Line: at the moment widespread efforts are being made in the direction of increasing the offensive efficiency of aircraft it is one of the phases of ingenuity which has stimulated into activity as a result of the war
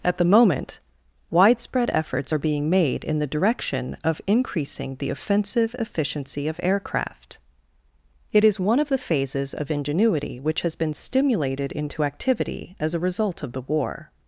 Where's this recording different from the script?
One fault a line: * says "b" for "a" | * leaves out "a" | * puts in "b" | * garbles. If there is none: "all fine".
* puts in "been"